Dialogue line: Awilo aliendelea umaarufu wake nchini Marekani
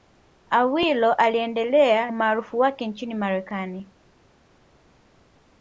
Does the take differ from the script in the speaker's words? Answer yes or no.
no